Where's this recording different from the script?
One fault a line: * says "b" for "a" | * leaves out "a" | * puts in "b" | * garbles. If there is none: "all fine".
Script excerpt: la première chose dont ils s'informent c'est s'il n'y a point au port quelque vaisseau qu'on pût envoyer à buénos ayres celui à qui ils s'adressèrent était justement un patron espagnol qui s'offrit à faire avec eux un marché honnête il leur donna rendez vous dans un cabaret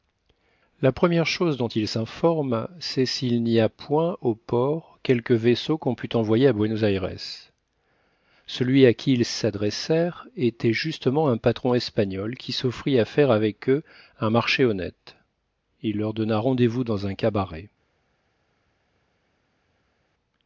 all fine